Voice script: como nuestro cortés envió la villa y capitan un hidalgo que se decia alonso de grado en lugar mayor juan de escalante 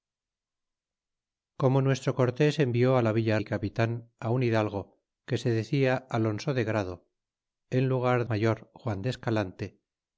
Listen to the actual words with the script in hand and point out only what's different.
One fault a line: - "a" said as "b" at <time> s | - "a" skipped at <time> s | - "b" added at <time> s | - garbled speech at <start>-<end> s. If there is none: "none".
none